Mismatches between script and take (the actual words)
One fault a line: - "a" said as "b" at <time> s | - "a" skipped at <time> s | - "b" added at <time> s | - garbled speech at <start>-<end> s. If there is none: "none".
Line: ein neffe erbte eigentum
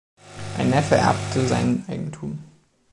- "sein" added at 1.4 s